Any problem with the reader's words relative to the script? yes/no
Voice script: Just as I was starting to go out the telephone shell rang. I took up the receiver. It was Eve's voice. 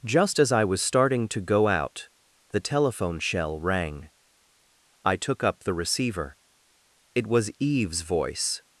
no